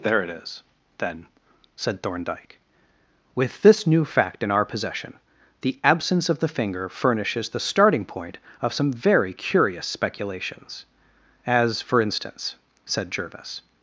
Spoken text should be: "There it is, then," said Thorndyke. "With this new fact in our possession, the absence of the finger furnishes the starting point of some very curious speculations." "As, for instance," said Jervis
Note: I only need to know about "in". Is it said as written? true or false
true